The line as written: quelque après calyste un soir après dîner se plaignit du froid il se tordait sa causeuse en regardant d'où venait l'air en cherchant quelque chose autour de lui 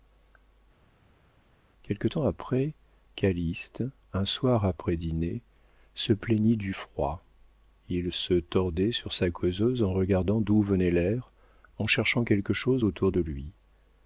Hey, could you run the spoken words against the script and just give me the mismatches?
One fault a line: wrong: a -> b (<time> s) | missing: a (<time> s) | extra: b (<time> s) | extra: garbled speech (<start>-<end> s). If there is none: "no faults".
extra: temps (2.1 s)
extra: sur (8.9 s)